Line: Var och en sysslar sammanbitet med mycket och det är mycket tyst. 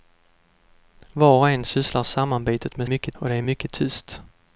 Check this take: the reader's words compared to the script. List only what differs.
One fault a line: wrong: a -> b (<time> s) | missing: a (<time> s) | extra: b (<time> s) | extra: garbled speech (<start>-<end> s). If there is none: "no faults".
no faults